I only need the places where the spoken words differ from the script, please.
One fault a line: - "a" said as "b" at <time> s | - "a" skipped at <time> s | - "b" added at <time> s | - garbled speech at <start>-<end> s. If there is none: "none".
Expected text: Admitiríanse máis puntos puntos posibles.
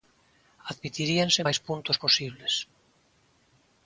- "puntos" skipped at 2.0 s